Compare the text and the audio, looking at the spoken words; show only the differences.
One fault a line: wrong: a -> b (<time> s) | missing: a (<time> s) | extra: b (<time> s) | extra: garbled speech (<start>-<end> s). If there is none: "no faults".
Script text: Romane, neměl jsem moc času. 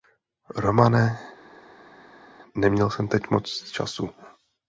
extra: teď (3.1 s)